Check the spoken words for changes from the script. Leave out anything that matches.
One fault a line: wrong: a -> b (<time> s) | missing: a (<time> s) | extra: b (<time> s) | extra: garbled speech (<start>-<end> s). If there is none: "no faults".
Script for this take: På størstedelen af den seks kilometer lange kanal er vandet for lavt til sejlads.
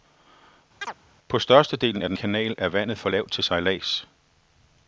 missing: seks kilometer lange (2.2 s)